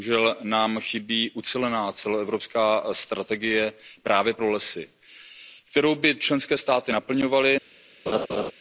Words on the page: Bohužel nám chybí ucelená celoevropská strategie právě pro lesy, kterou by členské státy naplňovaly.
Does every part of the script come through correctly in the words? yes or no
yes